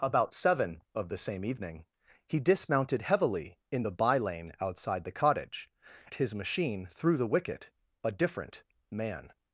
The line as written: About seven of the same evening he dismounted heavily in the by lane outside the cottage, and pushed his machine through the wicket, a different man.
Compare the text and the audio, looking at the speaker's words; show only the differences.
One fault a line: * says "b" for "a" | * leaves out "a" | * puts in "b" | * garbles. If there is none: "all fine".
* leaves out "and pushed"